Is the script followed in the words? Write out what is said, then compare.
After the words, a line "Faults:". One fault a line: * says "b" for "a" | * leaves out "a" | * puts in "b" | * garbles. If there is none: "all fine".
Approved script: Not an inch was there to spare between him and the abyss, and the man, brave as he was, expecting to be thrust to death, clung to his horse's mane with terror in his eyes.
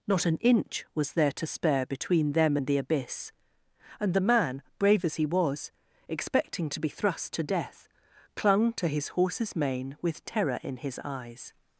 Not an inch was there to spare between them and the abyss, and the man, brave as he was, expecting to be thrust to death, clung to his horse's mane with terror in his eyes.
Faults:
* says "them" for "him"